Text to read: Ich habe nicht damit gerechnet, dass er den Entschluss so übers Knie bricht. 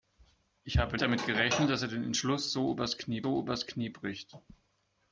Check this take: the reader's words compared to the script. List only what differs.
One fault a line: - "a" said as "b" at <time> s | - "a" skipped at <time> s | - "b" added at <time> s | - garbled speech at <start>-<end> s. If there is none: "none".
- "nicht" skipped at 1.0 s
- "so übers Knie" added at 3.2 s